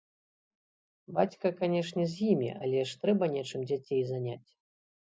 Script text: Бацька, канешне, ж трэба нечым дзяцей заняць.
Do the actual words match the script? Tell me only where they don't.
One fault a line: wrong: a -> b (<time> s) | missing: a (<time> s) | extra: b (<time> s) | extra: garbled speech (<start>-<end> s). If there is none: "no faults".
extra: з імі але (2.1 s)